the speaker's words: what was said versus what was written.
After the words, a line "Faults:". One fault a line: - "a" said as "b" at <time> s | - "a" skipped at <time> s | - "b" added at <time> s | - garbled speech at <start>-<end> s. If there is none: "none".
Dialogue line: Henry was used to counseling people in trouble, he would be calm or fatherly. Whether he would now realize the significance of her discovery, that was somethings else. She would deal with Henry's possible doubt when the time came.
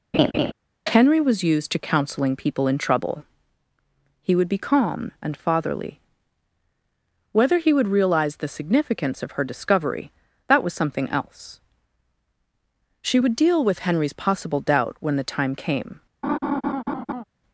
Henry was used to counseling people in trouble, he would be calm and fatherly. Whether he would realize the significance of her discovery, that was something else. She would deal with Henry's possible doubt when the time came.
Faults:
- "or" said as "and" at 5.2 s
- "now" skipped at 7.9 s
- "somethings" said as "something" at 10.7 s